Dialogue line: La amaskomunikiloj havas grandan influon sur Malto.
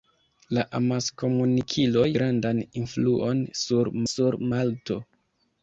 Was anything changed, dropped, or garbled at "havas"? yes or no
yes